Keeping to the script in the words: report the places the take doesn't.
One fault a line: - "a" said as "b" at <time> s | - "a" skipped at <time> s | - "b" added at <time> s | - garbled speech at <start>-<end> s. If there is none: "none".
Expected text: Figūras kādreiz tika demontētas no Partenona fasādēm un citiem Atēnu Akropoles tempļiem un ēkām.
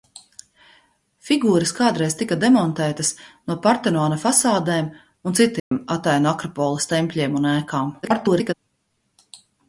- garbled speech at 8.0-8.5 s